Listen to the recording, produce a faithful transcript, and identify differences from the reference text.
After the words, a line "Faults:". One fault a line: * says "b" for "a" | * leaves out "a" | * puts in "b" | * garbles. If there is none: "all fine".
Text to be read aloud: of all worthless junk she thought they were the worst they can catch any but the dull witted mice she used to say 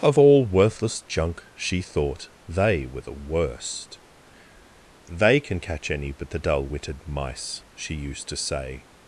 of all worthless junk she thought they were the worst they can catch any but the dull witted mice she used to say
Faults:
all fine